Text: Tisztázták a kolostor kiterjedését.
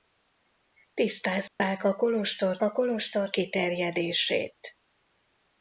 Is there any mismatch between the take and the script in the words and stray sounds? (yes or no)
yes